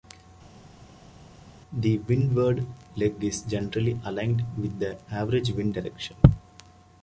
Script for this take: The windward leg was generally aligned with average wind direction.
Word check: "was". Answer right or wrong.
wrong